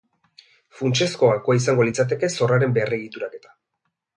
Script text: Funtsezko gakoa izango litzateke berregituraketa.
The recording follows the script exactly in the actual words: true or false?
false